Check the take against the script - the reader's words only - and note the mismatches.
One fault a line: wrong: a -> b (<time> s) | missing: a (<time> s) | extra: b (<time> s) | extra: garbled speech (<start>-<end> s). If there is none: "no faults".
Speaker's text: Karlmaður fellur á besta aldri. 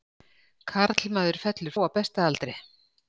no faults